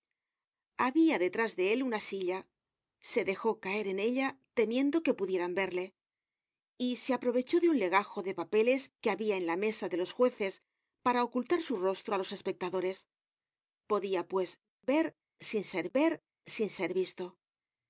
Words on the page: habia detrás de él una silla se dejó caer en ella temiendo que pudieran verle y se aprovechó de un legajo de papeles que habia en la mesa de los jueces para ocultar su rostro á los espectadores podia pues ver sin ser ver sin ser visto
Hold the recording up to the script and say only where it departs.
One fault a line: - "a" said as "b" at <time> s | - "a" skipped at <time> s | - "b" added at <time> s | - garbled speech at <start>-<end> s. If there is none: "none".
none